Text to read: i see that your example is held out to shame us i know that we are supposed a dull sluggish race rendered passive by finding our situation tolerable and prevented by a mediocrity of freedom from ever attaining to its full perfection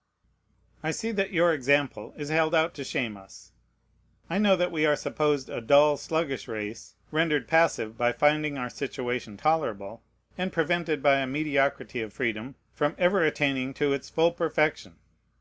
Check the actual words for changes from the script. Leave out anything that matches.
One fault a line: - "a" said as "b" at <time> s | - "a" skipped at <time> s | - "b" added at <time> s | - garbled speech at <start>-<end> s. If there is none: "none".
none